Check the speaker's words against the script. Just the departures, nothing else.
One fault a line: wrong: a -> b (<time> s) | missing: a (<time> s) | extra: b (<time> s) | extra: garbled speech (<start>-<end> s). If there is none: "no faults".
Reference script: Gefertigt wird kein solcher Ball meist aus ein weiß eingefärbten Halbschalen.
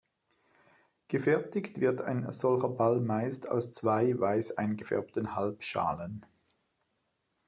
wrong: kein -> ein (2.0 s)
wrong: ein -> zwei (3.7 s)